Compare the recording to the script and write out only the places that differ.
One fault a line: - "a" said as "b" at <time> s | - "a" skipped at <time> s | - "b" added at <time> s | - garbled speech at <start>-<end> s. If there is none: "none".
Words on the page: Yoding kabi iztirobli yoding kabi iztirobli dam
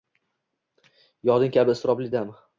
- "yoding kabi iztirobli" skipped at 2.1 s